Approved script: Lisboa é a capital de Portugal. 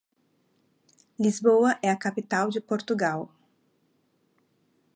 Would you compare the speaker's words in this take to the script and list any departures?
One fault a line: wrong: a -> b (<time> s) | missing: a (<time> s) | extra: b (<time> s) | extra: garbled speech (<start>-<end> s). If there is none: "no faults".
no faults